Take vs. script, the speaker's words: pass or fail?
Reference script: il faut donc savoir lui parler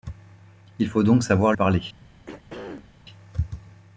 fail